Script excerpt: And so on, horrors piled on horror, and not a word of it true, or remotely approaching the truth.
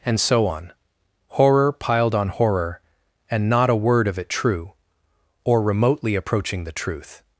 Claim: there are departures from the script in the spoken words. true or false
true